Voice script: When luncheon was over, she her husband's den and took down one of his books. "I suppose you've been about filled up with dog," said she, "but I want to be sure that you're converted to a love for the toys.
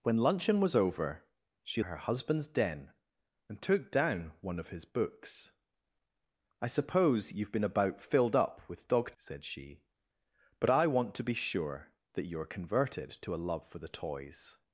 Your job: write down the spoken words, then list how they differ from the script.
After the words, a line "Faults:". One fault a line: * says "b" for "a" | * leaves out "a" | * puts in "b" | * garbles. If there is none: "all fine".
When luncheon was over, she her husband's den and took down one of his books. "I suppose you've been about filled up with dog," said she, "but I want to be sure that you're converted to a love for the toys.
Faults:
all fine